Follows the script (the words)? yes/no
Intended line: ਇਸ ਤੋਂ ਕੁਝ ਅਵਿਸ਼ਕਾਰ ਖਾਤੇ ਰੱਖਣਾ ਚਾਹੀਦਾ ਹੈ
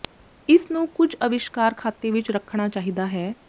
no